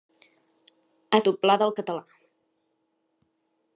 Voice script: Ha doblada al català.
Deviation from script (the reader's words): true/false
false